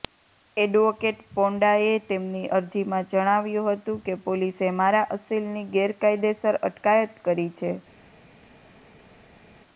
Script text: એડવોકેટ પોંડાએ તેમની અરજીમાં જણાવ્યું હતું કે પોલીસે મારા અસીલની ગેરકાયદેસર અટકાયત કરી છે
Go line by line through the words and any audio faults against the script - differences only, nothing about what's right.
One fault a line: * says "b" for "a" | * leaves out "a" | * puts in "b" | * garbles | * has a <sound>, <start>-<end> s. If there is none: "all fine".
all fine